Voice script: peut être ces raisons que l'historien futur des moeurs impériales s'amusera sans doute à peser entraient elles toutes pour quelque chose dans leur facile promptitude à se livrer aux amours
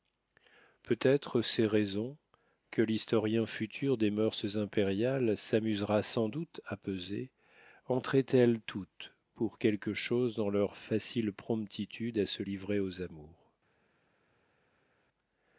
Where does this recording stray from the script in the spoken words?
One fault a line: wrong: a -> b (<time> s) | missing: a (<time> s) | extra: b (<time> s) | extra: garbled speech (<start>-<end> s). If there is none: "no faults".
no faults